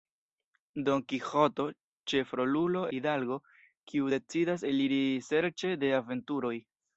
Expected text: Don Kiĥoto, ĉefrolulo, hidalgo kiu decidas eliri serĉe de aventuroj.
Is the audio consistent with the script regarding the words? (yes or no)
yes